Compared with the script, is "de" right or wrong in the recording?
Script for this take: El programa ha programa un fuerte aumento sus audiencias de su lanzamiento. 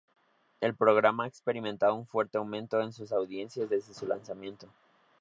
wrong